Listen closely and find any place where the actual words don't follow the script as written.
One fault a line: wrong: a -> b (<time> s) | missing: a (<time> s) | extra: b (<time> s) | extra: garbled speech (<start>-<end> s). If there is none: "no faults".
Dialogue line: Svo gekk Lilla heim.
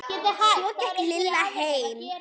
no faults